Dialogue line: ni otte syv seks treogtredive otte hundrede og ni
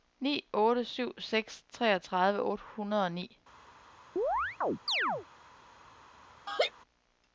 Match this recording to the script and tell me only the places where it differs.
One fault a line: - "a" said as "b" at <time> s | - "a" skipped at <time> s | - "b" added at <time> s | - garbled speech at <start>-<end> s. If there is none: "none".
none